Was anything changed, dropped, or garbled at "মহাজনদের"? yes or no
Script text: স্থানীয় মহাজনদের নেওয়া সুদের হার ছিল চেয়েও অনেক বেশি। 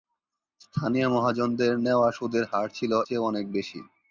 no